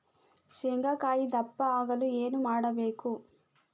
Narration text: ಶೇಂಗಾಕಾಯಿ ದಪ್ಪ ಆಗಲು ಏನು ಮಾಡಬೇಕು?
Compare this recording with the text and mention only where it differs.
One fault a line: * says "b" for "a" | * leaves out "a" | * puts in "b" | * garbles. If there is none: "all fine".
all fine